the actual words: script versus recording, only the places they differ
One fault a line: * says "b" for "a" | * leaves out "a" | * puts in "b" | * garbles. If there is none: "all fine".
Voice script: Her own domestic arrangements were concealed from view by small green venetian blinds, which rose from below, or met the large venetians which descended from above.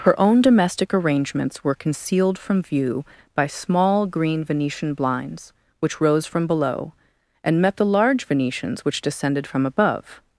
* says "and" for "or"